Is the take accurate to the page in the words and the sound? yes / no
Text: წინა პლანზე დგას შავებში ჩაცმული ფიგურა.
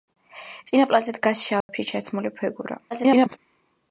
no